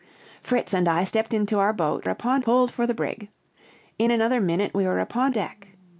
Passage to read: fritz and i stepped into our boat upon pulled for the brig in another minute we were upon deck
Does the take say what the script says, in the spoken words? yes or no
yes